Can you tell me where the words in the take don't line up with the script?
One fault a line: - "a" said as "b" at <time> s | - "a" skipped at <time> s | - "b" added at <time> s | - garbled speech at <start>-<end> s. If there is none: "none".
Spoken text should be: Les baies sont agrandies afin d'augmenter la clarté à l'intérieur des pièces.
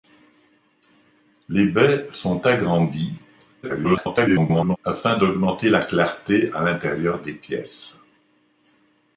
- garbled speech at 3.6-4.8 s